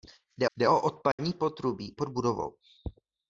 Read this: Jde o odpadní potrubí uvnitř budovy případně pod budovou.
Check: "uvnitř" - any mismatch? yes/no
yes